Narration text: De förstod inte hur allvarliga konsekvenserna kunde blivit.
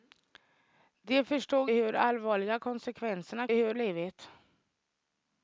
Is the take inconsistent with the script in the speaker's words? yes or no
yes